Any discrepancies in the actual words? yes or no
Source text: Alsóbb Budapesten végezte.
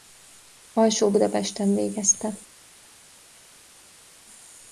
no